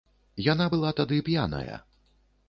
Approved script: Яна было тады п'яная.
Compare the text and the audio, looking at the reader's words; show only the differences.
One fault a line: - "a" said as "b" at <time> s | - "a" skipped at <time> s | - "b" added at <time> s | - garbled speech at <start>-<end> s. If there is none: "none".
- "было" said as "была" at 0.7 s